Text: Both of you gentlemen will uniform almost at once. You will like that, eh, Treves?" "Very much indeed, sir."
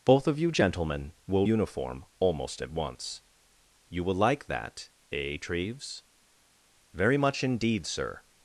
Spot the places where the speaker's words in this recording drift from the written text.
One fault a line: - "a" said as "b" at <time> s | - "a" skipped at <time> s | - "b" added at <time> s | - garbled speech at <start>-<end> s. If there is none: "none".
none